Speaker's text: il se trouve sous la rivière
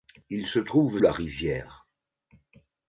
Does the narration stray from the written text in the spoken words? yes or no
yes